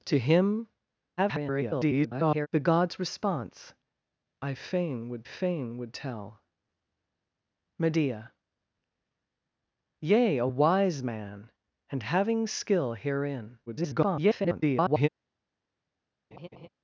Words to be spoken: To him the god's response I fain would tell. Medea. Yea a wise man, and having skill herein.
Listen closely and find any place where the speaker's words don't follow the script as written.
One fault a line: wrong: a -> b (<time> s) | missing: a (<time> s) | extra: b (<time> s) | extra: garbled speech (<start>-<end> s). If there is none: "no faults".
extra: garbled speech (1.2-2.5 s)
extra: fain would (5.2 s)
extra: garbled speech (13.7-15.1 s)